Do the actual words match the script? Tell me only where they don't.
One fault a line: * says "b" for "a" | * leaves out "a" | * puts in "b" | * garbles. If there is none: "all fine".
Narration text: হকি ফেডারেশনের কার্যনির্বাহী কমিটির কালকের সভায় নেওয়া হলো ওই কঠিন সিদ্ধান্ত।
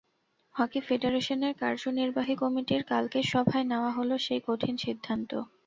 * says "সেই" for "ওই"